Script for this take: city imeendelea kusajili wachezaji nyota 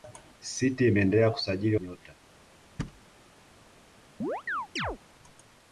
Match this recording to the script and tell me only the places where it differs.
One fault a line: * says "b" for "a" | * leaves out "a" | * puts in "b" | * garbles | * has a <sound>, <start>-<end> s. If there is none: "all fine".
* leaves out "wachezaji"
* has a thud, 2.8-3.0 s
* has a chirp, 4.2-5.0 s